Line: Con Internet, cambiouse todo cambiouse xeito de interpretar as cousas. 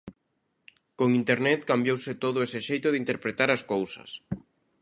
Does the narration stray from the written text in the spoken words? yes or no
yes